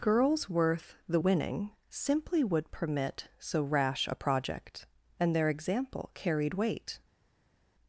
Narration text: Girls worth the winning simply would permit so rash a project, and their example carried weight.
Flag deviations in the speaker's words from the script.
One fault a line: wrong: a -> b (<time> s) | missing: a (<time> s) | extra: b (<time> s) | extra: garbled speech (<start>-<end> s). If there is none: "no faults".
no faults